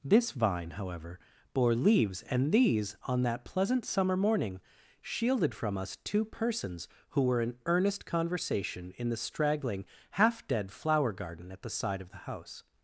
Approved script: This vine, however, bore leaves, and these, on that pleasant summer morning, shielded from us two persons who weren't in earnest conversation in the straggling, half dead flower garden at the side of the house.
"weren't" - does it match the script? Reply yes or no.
no